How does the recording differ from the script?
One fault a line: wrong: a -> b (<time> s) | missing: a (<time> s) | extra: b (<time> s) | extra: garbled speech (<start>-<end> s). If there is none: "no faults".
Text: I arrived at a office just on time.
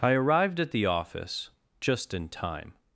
wrong: a -> the (0.7 s)
wrong: on -> in (2.1 s)